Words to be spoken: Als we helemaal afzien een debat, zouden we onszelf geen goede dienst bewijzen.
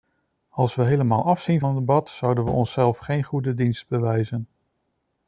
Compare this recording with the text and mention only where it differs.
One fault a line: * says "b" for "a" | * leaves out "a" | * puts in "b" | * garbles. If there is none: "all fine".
all fine